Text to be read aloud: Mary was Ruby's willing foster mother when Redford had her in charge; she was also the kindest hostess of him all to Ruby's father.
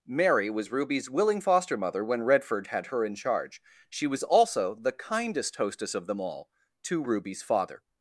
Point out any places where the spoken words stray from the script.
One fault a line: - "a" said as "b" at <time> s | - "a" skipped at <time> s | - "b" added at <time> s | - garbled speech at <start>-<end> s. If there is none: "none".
- "him" said as "them" at 6.1 s